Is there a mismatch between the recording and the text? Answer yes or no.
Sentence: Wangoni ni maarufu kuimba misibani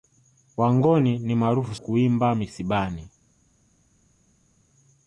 no